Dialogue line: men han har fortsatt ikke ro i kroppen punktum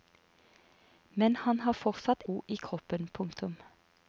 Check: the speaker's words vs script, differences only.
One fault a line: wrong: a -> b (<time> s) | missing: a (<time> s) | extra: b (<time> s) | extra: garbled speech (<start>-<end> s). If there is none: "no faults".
missing: ikke (2.2 s)